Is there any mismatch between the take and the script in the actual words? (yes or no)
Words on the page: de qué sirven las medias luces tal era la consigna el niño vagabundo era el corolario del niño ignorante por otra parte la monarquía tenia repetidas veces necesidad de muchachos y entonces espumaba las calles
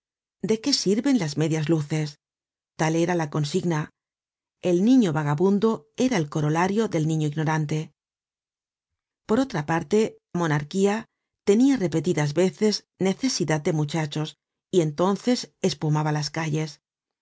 yes